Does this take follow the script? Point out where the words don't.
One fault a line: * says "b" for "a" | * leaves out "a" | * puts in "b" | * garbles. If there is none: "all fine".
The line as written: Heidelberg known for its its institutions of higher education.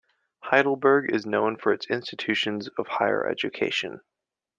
* puts in "is"
* leaves out "its"